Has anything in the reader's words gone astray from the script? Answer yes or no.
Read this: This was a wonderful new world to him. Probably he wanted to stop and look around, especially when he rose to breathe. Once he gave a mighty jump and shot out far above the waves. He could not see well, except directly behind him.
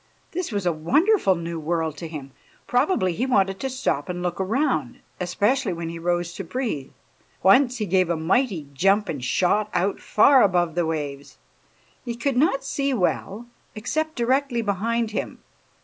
no